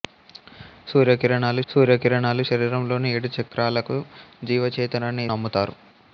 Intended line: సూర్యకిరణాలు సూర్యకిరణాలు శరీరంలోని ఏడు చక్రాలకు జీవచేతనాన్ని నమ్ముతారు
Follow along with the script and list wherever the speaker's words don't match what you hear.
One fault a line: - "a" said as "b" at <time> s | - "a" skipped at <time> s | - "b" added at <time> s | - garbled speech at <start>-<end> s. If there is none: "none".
none